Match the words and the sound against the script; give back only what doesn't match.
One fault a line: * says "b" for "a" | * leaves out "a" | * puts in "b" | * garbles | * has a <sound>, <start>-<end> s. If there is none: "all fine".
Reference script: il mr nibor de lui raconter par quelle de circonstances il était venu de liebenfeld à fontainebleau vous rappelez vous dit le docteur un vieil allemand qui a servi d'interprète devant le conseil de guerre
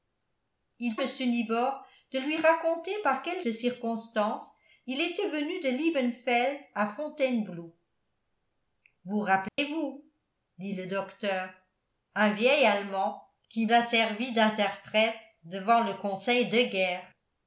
* has a dropout, 9.5-9.6 s